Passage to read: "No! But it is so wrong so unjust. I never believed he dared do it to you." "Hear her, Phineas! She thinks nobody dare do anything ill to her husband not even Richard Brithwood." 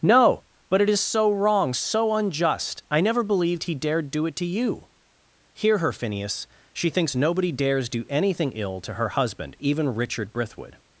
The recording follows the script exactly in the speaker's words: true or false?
false